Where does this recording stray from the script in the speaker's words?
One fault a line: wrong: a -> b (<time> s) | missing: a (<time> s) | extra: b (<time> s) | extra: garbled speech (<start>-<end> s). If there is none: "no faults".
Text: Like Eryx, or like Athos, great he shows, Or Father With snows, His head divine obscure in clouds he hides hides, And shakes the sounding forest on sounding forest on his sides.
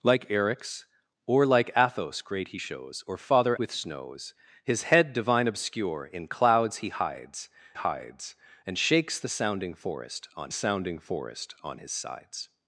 no faults